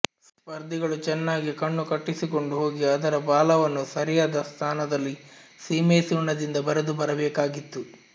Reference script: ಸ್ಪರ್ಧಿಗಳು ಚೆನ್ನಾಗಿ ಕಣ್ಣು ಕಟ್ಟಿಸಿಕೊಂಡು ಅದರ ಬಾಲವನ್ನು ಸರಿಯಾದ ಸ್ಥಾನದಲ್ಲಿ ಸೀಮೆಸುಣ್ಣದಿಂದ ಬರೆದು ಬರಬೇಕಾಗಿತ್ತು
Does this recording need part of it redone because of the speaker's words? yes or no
yes